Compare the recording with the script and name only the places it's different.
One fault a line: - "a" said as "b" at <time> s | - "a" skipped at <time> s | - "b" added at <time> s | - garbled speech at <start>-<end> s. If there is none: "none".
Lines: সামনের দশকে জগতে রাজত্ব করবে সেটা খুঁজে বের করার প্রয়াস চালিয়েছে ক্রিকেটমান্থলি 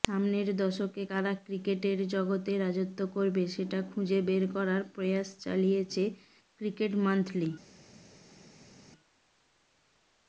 - "কারা ক্রিকেটের" added at 1.1 s